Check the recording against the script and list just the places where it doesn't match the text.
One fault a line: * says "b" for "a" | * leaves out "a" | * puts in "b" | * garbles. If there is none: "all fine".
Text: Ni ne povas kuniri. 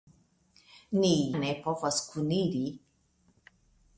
all fine